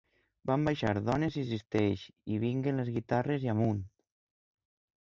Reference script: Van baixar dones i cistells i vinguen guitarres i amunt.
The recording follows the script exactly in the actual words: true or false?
false